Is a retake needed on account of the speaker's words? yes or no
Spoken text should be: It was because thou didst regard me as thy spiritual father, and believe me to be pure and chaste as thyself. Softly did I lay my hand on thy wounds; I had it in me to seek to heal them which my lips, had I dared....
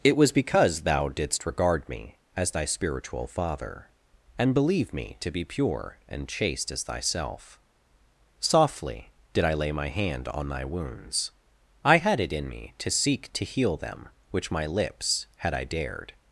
no